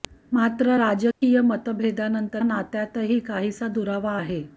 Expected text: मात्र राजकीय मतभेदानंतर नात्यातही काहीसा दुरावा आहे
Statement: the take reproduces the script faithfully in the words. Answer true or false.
true